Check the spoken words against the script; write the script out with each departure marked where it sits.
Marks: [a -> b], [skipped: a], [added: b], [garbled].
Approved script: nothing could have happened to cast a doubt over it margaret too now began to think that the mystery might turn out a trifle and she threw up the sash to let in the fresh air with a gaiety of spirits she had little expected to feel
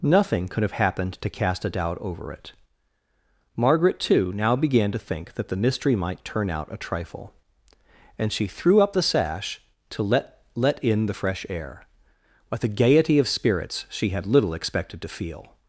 nothing could have happened to cast a doubt over it margaret too now began to think that the mystery might turn out a trifle and she threw up the sash to let [added: let] in the fresh air with a gaiety of spirits she had little expected to feel